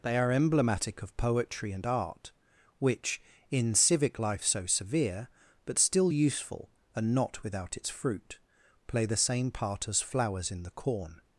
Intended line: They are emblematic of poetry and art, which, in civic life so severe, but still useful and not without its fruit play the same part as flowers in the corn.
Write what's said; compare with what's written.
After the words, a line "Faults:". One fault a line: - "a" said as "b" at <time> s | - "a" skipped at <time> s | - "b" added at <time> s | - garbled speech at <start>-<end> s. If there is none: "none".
They are emblematic of poetry and art, which, in civic life so severe, but still useful and not without its fruit play the same part as flowers in the corn.
Faults:
none